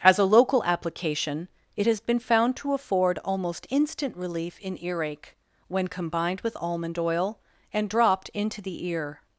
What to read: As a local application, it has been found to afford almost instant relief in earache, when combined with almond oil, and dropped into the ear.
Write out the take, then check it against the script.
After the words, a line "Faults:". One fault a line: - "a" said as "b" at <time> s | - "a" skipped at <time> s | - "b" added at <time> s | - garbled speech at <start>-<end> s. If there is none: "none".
As a local application, it has been found to afford almost instant relief in earache, when combined with almond oil, and dropped into the ear.
Faults:
none